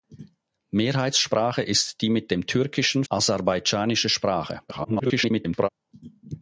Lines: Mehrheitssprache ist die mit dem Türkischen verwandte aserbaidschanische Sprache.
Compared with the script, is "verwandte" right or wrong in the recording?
wrong